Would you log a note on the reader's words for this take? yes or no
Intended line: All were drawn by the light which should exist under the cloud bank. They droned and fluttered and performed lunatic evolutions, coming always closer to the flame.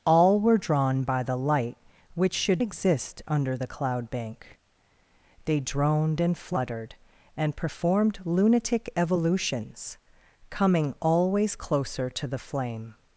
no